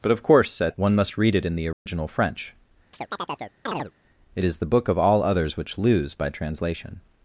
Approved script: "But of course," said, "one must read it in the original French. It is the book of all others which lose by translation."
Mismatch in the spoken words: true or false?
false